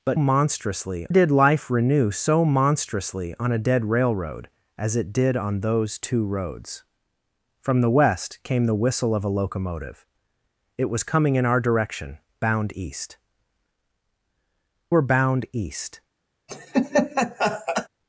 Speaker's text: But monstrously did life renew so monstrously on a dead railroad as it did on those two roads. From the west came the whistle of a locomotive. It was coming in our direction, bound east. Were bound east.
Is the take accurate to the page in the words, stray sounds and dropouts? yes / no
no